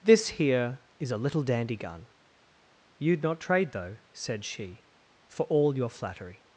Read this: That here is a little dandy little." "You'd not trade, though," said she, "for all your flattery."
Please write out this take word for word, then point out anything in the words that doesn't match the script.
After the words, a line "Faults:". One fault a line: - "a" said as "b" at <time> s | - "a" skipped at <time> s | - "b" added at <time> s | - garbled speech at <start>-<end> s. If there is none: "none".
This here is a little dandy gun." "You'd not trade, though," said she, "for all your flattery."
Faults:
- "That" said as "This" at 0.0 s
- "little" said as "gun" at 1.8 s